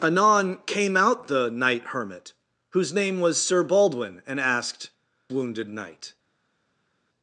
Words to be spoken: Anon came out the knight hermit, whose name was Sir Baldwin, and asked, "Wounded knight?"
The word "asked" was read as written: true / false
true